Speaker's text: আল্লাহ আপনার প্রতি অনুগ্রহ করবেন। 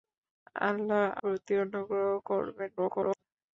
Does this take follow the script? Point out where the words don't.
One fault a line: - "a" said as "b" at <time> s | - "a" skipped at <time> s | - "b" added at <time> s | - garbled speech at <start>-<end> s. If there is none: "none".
- "আপনার" skipped at 1.0 s
- garbled speech at 2.8-3.2 s